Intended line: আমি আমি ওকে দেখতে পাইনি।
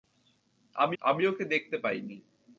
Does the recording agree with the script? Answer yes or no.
yes